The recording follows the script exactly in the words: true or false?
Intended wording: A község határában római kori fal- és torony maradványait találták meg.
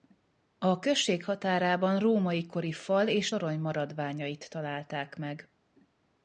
true